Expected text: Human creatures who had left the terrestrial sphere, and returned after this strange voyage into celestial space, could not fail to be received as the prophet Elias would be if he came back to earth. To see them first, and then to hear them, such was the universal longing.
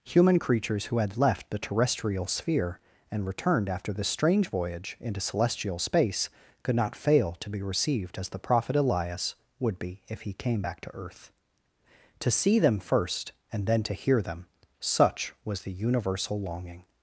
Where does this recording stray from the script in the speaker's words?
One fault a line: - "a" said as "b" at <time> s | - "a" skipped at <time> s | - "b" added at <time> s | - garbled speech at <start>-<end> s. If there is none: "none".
none